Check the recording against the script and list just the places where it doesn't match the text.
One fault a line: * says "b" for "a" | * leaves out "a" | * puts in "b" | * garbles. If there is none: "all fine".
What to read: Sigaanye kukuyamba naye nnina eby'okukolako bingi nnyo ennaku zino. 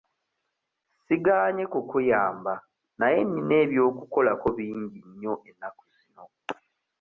all fine